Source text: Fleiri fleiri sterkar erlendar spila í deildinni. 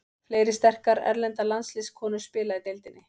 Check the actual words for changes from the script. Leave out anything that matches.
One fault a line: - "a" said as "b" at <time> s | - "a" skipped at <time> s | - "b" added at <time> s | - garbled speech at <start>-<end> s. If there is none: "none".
- "fleiri" skipped at 0.5 s
- "landsliðskonur" added at 1.5 s